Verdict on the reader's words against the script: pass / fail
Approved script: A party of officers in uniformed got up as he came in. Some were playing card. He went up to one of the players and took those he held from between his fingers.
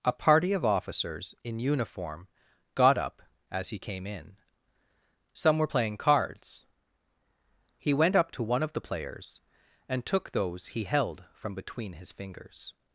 fail